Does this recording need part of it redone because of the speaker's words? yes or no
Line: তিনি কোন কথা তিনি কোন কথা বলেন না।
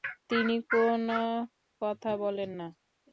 yes